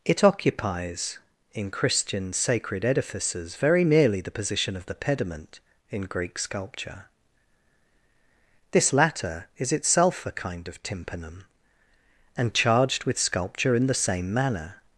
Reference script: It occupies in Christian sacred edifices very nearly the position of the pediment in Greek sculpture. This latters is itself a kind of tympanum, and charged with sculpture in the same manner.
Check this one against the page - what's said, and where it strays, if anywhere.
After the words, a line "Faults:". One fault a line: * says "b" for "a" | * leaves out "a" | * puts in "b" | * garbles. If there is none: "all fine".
It occupies in Christian sacred edifices very nearly the position of the pediment in Greek sculpture. This latter is itself a kind of tympanum, and charged with sculpture in the same manner.
Faults:
* says "latter" for "latters"